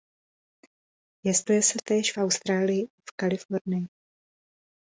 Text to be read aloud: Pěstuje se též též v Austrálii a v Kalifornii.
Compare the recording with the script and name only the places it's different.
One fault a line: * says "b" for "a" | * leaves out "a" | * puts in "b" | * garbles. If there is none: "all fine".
* leaves out "též"